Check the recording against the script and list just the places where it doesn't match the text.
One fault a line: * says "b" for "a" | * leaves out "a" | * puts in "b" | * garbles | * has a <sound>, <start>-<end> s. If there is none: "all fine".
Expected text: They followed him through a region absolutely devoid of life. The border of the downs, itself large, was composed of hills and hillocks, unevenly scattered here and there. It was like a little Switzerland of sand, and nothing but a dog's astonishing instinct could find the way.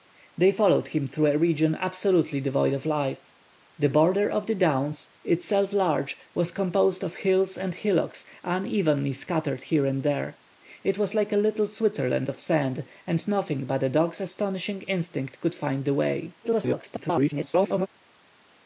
* garbles